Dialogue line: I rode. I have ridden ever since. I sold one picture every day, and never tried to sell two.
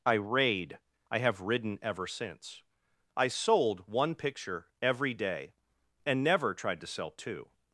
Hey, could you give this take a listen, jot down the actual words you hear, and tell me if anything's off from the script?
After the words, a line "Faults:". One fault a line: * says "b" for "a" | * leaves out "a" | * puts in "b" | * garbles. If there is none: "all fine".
I raid. I have ridden ever since. I sold one picture every day, and never tried to sell two.
Faults:
* says "raid" for "rode"